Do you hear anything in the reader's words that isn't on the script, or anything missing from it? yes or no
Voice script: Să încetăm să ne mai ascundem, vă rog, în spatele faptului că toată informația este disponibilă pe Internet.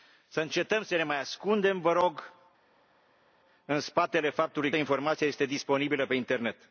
yes